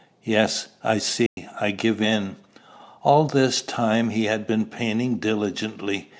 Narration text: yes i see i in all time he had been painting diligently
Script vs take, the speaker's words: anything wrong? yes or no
yes